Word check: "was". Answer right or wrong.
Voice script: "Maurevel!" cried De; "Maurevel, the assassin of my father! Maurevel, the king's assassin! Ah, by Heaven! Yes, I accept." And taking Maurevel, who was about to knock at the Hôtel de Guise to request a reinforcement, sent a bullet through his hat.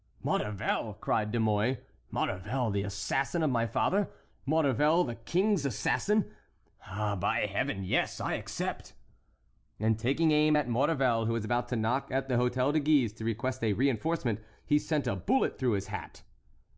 right